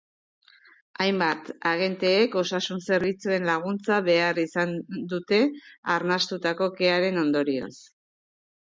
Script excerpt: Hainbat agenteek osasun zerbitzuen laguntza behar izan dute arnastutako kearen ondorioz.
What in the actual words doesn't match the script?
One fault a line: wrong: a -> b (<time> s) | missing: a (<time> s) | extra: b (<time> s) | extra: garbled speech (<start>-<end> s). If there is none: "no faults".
no faults